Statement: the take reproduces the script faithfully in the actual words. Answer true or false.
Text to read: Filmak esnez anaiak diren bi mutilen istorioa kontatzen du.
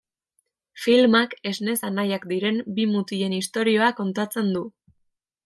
true